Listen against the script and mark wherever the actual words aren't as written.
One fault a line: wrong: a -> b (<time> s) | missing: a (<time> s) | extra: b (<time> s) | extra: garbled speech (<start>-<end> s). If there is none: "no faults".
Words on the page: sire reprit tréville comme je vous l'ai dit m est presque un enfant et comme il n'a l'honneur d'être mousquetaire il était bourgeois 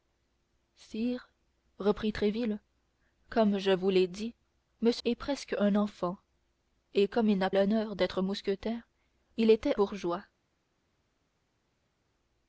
no faults